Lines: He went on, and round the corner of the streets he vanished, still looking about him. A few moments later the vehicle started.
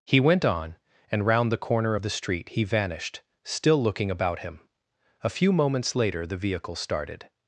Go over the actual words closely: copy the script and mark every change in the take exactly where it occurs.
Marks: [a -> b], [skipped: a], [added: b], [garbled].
He went on, and round the corner of the [streets -> street] he vanished, still looking about him. A few moments later the vehicle started.